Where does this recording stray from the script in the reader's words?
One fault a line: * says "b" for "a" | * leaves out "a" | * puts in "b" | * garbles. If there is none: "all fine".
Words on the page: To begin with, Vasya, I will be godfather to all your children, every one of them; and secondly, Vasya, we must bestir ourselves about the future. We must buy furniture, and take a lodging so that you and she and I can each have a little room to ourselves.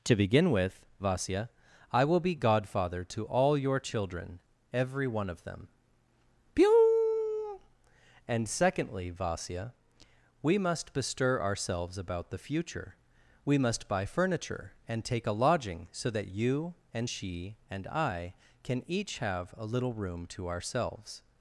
* puts in "pew"